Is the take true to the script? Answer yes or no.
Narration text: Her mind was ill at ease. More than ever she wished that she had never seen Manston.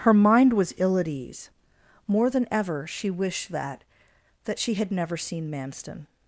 no